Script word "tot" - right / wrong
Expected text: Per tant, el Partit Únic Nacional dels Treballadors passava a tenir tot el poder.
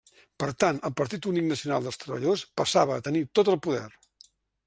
right